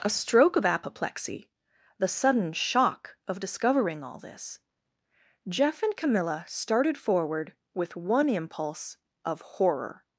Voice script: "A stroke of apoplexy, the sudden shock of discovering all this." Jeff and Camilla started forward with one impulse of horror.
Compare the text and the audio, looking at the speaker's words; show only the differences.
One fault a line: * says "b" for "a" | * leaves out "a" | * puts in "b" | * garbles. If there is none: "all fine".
all fine